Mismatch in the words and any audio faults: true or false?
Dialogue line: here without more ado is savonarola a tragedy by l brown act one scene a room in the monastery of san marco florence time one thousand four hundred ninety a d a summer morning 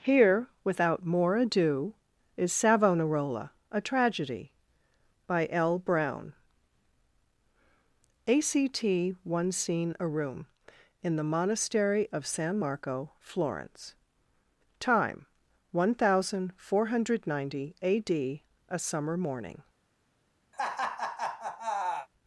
true